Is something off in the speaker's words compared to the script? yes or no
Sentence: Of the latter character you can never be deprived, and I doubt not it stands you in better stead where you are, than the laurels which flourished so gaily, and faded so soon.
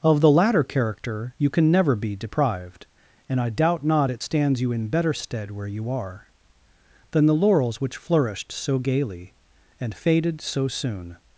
no